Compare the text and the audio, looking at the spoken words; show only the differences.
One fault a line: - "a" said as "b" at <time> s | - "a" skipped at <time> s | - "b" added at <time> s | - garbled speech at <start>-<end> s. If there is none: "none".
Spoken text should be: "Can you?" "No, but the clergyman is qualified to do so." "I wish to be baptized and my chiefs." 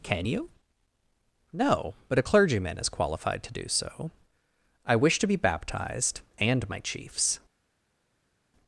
- "the" said as "a" at 2.2 s